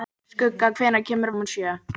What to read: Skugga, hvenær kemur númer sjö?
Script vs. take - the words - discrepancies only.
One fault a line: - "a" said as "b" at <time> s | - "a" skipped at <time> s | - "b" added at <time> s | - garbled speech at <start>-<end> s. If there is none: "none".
none